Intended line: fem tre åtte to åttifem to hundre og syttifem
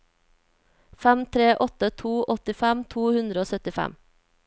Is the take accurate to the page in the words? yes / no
yes